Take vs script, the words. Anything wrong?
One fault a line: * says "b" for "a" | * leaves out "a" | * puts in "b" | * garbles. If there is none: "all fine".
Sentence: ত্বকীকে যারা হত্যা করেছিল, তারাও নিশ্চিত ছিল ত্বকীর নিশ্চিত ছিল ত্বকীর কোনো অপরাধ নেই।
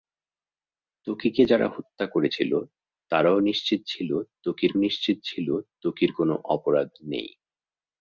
all fine